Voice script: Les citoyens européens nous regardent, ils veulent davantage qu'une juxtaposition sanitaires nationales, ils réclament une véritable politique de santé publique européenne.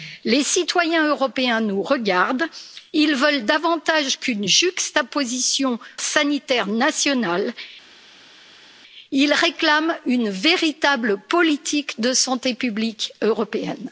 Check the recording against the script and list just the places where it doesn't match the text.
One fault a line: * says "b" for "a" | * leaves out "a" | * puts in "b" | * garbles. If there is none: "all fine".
all fine